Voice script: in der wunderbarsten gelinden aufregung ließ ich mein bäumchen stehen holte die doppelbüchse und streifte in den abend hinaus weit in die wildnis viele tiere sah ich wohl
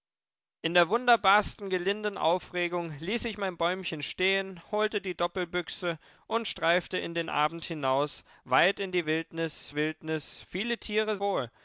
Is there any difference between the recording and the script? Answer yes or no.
yes